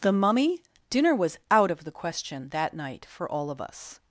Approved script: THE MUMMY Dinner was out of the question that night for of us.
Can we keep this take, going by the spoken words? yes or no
no